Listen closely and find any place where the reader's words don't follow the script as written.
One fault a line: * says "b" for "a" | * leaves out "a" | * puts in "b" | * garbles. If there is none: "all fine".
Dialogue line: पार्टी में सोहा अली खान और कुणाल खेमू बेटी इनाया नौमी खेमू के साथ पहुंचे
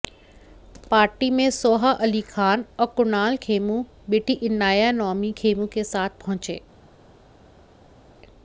all fine